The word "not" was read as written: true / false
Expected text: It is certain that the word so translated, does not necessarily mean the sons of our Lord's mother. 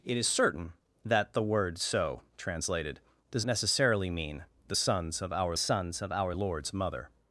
false